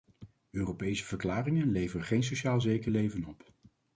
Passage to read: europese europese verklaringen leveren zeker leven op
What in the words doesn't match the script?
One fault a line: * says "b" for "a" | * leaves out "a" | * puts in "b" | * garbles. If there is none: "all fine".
* leaves out "europese"
* puts in "geen sociaal"